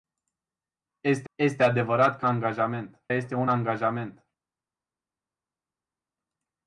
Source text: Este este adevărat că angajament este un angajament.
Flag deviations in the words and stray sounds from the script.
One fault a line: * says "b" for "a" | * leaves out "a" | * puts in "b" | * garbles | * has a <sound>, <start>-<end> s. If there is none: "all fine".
all fine